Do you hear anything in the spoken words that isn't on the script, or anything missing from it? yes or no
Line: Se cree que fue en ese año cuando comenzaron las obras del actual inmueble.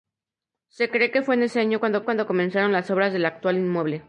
yes